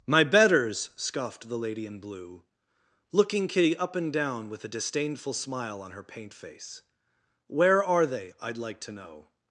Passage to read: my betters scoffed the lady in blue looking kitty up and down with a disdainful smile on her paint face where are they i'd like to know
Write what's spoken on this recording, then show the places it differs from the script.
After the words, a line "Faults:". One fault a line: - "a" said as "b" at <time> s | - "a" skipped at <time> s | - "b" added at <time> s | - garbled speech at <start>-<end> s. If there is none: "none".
my betters scoffed the lady in blue looking kitty up and down with a disdainful smile on her paint face where are they i'd like to know
Faults:
none